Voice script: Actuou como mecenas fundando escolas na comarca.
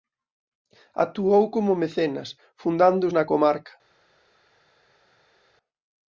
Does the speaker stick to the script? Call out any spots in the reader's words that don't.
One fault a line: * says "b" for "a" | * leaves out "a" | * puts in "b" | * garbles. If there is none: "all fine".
* leaves out "escolas"